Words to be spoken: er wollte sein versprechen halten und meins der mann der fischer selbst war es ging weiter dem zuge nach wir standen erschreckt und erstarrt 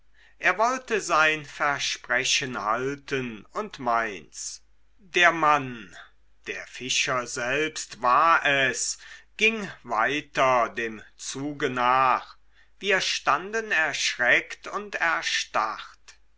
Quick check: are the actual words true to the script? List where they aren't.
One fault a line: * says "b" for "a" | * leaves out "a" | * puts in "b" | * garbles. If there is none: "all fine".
all fine